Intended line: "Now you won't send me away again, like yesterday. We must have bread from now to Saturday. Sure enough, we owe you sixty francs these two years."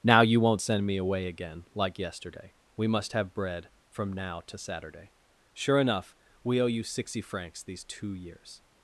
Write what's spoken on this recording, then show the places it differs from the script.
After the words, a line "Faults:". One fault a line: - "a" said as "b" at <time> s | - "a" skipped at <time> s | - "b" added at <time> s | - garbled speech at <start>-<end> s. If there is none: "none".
"Now you won't send me away again, like yesterday. We must have bread from now to Saturday. Sure enough, we owe you sixty francs these two years."
Faults:
none